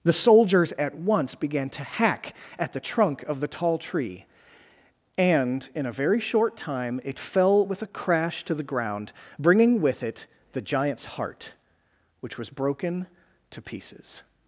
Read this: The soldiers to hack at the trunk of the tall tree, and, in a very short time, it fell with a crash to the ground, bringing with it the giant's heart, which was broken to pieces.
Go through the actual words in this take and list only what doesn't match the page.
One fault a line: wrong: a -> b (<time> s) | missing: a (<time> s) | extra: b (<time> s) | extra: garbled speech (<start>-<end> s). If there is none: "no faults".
extra: at once began (0.7 s)